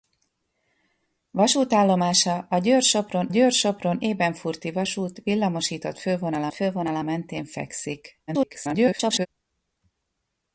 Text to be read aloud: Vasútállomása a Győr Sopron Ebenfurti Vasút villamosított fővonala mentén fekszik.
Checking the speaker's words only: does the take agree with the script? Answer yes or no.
no